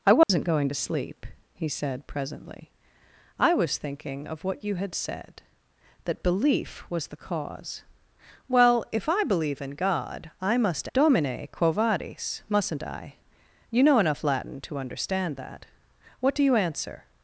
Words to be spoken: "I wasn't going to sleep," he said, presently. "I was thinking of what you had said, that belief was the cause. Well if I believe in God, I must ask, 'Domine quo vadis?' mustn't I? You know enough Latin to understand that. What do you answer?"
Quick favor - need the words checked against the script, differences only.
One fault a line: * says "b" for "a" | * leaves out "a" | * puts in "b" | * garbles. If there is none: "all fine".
* leaves out "ask"